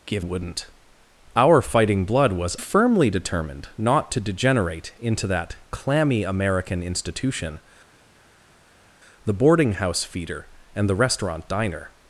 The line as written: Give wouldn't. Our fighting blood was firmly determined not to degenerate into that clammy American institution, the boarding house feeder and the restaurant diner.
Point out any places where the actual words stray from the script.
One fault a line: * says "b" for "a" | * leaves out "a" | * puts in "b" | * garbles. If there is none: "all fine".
all fine